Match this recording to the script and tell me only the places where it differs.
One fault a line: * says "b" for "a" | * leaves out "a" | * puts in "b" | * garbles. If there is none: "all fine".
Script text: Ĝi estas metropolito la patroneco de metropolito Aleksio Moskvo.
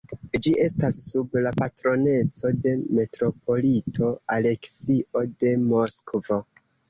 * says "sub" for "metropolito"
* puts in "de"